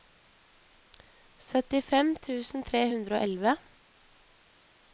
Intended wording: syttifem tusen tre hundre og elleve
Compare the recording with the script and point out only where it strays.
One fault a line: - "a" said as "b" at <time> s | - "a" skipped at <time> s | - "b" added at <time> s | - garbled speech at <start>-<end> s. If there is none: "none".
none